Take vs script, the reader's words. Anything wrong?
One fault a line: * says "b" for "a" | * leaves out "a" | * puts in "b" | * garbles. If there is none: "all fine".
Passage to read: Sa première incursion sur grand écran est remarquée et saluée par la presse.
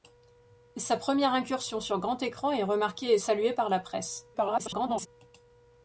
* garbles